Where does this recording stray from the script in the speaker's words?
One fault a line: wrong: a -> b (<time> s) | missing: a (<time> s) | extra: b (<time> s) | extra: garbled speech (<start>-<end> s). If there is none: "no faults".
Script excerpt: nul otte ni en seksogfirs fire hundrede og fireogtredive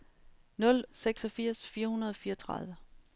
missing: otte ni en (0.8 s)